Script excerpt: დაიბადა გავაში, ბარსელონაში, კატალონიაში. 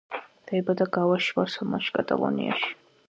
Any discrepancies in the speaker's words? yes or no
no